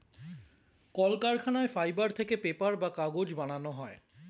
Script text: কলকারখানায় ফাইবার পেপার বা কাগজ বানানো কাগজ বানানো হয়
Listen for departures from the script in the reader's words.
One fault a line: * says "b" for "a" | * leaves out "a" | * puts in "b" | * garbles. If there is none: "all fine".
* puts in "থেকে"
* leaves out "কাগজ বানানো"